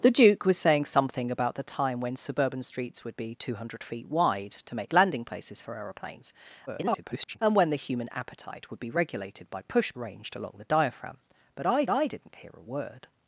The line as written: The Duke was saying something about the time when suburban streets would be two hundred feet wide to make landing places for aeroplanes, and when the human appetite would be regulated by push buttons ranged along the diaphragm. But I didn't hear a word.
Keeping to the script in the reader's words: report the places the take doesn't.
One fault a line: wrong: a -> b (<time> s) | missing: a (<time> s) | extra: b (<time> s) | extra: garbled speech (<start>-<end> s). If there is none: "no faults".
extra: garbled speech (6.7-7.4 s)
missing: buttons (9.9 s)
extra: I (11.9 s)